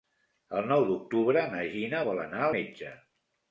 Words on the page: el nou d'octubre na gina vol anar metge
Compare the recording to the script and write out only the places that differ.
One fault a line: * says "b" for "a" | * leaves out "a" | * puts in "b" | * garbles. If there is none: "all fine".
all fine